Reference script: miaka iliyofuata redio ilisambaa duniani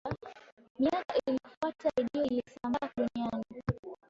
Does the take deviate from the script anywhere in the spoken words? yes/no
no